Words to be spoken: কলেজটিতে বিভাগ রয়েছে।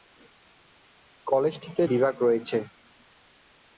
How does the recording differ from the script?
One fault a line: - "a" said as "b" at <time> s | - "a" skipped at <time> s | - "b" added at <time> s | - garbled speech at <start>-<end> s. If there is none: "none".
none